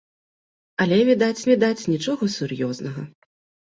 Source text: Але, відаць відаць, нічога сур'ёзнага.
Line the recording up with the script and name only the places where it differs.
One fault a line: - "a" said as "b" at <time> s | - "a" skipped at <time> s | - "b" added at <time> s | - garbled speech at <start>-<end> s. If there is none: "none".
none